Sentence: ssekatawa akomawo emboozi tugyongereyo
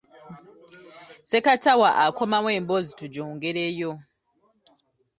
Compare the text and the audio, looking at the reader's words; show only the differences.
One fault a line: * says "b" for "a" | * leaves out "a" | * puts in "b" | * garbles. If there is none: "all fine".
all fine